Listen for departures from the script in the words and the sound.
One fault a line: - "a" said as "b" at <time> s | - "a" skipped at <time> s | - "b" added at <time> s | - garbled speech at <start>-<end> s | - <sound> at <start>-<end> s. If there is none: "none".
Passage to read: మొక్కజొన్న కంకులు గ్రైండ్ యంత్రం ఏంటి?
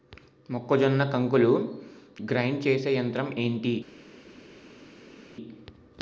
- "చేసే" added at 2.7 s